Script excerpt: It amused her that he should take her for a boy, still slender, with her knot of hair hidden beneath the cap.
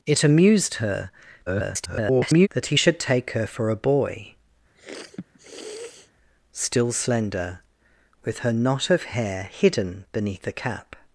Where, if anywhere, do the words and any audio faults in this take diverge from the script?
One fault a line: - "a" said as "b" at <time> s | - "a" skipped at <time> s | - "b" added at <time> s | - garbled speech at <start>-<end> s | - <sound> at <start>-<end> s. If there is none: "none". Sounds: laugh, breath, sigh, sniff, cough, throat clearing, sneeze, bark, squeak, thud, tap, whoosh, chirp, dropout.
- garbled speech at 1.5-2.5 s
- sniff at 4.7-6.1 s